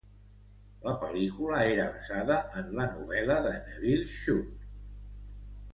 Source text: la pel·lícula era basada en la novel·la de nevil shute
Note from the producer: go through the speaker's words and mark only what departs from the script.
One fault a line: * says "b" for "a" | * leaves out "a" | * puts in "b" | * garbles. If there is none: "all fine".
all fine